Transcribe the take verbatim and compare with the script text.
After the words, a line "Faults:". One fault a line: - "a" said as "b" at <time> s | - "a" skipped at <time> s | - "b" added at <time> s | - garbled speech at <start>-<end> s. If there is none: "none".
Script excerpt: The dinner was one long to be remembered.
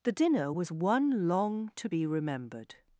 The dinner was one long to be remembered.
Faults:
none